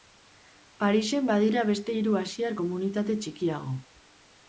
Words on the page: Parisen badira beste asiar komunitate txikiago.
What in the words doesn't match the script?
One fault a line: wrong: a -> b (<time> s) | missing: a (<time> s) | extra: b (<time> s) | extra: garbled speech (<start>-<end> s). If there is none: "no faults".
extra: hiru (2.0 s)